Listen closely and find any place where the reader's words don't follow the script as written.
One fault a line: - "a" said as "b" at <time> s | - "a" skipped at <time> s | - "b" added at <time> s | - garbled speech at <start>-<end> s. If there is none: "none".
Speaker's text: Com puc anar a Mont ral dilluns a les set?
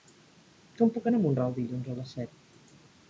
none